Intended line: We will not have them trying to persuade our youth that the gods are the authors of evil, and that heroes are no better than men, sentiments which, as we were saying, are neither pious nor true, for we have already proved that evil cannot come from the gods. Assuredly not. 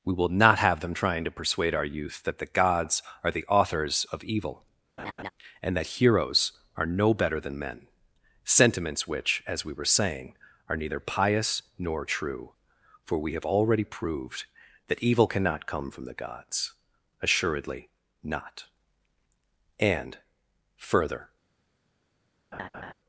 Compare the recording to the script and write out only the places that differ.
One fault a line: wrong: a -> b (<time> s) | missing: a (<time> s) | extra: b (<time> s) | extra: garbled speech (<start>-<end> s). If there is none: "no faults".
extra: And further (19.8 s)